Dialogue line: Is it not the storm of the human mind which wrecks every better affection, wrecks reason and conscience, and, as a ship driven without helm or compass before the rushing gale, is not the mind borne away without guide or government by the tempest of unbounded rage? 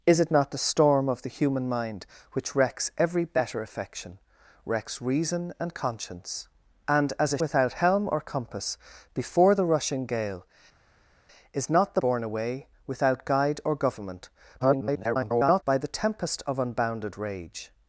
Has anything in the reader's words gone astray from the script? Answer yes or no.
yes